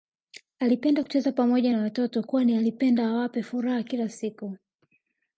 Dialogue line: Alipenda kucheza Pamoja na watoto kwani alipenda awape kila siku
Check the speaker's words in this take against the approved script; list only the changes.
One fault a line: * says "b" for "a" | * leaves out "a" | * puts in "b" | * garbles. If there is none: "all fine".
* puts in "furaha"